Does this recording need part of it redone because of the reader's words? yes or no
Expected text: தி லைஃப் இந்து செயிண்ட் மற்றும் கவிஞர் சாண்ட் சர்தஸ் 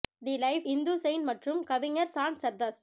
no